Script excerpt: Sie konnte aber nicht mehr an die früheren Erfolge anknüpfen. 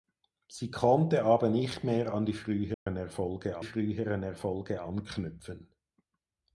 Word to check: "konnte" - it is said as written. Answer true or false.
true